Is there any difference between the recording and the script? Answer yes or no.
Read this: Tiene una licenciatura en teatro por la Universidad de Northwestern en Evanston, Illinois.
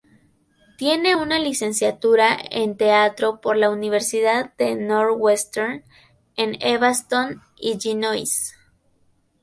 no